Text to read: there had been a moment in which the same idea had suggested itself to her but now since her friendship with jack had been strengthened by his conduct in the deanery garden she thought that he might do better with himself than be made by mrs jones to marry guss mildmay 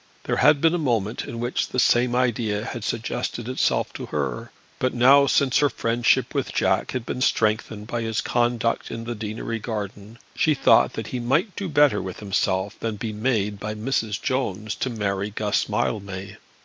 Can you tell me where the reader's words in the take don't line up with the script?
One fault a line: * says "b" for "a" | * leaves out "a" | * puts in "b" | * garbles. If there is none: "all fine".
all fine